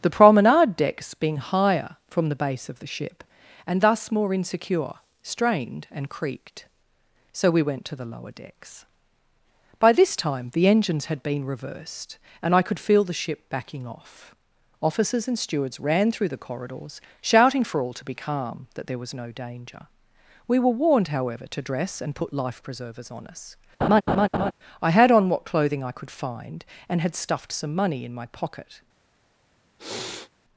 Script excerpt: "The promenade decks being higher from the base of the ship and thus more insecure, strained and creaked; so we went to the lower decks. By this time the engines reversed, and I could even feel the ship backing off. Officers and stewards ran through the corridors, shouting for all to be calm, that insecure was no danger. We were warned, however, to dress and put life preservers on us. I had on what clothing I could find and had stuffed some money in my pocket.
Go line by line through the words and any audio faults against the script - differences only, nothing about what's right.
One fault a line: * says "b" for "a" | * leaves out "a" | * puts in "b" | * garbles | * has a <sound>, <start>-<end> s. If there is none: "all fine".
* puts in "had been"
* leaves out "even"
* says "there" for "insecure"
* has a laugh, 23.8-24.5 s
* has a sniff, 29.8-30.3 s